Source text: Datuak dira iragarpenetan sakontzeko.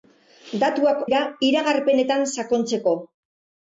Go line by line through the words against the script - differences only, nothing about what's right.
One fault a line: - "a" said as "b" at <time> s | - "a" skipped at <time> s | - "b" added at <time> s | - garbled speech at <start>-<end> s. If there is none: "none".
none